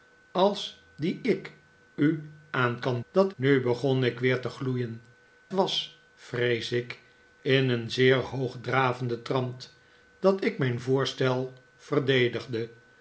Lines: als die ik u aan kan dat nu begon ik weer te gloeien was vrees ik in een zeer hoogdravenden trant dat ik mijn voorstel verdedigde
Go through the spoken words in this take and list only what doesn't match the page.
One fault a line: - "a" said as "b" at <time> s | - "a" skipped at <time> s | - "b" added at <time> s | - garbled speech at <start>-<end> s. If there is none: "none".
none